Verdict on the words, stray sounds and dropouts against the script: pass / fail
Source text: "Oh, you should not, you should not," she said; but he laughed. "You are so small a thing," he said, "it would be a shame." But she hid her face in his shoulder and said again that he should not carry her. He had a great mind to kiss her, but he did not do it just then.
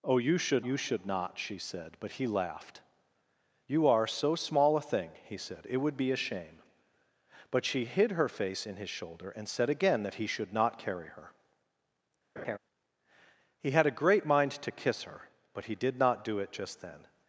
fail